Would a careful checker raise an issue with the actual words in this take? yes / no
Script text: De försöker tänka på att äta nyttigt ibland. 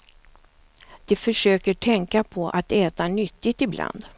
no